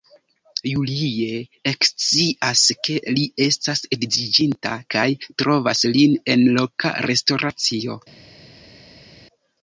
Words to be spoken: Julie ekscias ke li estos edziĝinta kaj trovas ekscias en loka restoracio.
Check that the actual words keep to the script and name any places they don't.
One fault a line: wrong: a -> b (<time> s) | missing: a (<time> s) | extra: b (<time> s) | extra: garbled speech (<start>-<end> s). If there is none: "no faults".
wrong: estos -> estas (3.5 s)
wrong: ekscias -> lin (6.0 s)